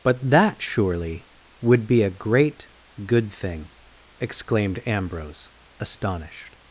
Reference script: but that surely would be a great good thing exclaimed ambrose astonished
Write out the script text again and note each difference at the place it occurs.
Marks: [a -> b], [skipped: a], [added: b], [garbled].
but that surely would be a great good thing exclaimed ambrose astonished